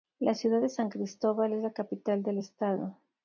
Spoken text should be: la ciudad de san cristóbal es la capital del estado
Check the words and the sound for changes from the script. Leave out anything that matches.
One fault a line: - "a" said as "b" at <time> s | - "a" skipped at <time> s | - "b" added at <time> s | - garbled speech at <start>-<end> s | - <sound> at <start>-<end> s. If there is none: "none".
none